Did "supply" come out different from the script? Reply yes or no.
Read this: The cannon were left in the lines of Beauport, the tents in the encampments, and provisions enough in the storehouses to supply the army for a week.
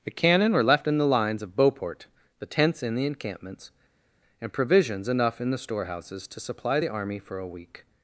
no